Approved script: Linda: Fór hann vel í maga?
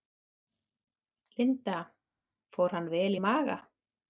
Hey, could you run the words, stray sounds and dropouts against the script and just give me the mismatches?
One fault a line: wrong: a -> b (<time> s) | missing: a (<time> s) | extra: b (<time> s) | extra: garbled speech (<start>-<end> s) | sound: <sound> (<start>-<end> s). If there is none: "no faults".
no faults